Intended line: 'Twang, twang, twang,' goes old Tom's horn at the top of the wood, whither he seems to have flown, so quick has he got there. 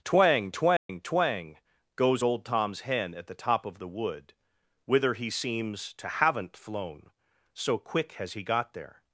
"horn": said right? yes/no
no